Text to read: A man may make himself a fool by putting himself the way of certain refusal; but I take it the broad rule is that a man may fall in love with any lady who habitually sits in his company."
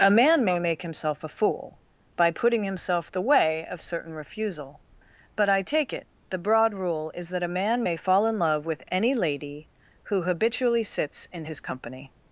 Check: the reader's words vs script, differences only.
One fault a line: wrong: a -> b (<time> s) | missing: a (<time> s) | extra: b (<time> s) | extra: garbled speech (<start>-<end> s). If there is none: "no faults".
no faults